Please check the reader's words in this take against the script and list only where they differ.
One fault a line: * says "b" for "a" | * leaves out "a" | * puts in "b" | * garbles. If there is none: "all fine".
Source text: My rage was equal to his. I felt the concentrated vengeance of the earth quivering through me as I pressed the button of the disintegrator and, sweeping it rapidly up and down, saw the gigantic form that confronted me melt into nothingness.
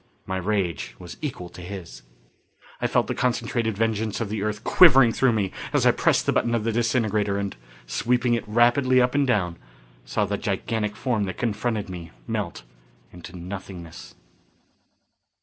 all fine